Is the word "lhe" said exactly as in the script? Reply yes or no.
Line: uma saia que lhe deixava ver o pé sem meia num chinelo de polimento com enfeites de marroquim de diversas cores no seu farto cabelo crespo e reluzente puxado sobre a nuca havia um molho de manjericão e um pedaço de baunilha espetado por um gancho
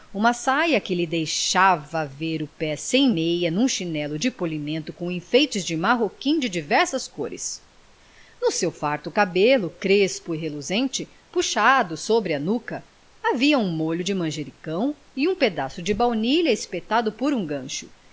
yes